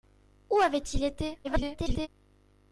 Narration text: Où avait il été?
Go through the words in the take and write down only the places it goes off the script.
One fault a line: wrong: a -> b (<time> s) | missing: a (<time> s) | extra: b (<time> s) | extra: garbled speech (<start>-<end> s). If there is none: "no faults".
extra: garbled speech (1.4-2.1 s)